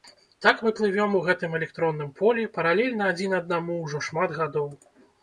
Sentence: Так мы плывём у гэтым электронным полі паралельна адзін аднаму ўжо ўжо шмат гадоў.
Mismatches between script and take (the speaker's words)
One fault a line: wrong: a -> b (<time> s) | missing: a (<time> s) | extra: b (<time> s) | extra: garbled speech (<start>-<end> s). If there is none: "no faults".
missing: ўжо (4.0 s)